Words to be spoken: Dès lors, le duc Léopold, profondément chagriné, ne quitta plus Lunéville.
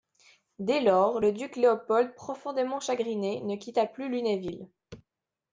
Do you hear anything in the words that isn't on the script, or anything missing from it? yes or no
no